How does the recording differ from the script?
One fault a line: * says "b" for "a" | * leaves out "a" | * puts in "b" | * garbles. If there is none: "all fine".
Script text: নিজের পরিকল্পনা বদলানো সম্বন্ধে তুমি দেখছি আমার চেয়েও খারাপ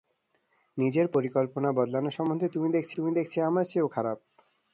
* puts in "তুমি দেখছি"